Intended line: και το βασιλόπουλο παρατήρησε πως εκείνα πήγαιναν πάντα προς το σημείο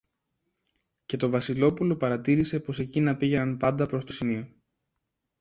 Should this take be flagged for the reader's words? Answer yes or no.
no